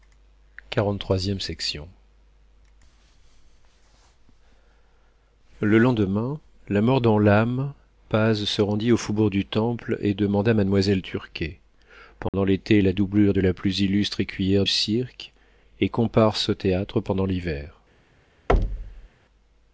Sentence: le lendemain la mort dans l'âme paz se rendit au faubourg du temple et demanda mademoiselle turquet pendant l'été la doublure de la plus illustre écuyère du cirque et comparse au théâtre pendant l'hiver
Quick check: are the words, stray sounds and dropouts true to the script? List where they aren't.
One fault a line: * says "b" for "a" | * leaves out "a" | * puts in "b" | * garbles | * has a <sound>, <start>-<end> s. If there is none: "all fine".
* has a dropout, 12.3-12.3 s
* leaves out "du"
* has a thud, 18.5-19.1 s